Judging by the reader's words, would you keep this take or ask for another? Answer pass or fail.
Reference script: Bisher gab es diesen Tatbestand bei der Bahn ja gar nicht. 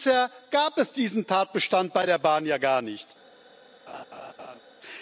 pass